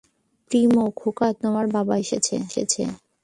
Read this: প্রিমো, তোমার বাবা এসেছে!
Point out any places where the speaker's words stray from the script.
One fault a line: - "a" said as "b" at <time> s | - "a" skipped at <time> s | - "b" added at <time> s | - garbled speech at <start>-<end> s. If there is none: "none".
- "খোকা" added at 0.9 s